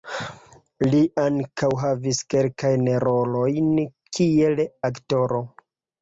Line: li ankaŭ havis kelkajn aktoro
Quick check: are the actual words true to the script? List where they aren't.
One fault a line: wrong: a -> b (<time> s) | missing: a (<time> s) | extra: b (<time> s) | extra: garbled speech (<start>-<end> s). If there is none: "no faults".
extra: rolojn kiel (3.0 s)